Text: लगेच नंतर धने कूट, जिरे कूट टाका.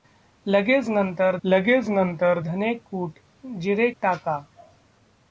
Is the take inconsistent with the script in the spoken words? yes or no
yes